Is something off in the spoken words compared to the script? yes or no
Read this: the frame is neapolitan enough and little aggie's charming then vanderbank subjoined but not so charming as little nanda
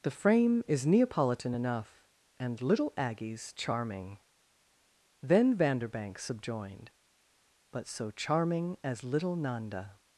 yes